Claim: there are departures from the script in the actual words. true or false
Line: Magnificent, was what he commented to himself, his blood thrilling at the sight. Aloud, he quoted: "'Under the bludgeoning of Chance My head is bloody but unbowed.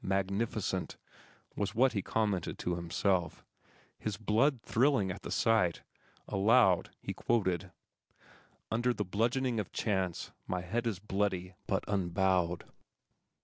false